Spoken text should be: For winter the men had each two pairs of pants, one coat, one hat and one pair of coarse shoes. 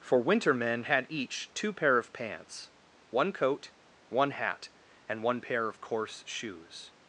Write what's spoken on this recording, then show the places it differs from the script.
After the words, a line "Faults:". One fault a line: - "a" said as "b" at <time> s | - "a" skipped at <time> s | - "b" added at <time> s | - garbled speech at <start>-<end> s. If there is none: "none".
For winter men had each two pair of pants, one coat, one hat and one pair of coarse shoes.
Faults:
- "the" skipped at 0.5 s
- "pairs" said as "pair" at 1.7 s